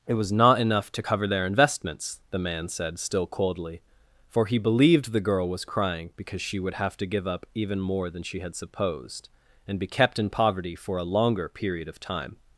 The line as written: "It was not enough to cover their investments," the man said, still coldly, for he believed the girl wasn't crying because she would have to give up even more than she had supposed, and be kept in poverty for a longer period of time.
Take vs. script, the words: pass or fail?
fail